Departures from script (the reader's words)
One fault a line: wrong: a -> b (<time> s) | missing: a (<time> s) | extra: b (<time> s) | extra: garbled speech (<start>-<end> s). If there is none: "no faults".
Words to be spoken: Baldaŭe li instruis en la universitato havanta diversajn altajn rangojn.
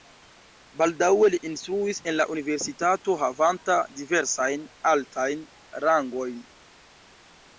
no faults